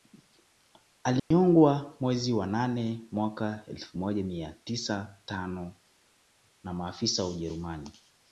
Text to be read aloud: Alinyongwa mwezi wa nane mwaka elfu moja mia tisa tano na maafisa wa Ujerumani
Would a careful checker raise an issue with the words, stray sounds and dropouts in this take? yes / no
yes